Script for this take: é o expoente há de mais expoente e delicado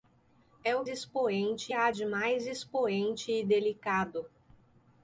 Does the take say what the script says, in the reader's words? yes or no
yes